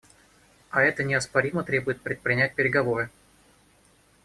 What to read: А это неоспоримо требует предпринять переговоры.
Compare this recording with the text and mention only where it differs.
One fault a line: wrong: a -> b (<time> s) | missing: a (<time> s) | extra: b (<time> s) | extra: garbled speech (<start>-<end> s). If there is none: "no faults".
no faults